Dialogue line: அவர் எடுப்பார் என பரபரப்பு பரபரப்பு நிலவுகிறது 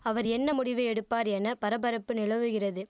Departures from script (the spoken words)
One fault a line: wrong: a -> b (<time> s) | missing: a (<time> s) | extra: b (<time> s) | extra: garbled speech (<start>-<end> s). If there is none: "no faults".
extra: என்ன முடிவு (0.3 s)
missing: பரபரப்பு (2.1 s)